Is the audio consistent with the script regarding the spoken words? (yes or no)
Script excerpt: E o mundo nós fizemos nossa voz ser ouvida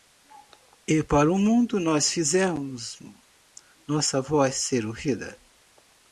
no